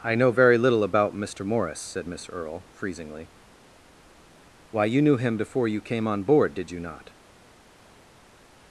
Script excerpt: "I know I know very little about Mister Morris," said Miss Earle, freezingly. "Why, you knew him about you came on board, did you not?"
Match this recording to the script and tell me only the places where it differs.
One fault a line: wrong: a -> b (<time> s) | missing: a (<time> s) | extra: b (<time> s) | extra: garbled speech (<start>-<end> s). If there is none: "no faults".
missing: I know (0.3 s)
wrong: about -> before (5.4 s)